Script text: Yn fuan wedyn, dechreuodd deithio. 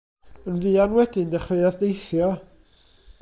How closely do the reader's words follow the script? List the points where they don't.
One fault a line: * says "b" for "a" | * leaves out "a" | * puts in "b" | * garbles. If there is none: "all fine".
all fine